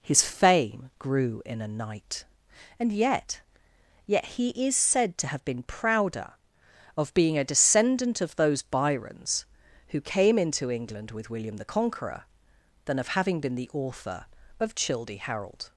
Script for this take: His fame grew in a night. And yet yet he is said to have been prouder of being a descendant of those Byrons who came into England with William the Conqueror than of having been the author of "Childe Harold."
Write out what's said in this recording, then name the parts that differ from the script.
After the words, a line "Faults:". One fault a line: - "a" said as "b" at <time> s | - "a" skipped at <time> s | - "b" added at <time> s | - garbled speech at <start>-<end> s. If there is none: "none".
His fame grew in a night. And yet yet he is said to have been prouder of being a descendant of those Byrons who came into England with William the Conqueror than of having been the author of "Childe Harold."
Faults:
none